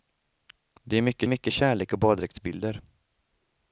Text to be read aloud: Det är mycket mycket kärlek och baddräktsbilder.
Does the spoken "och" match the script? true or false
true